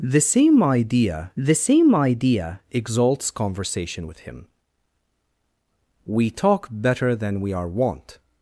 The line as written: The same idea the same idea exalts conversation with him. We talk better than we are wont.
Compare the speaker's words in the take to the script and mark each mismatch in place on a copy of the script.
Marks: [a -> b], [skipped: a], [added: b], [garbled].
The same idea the same idea exalts conversation with him. We talk better than we are wont.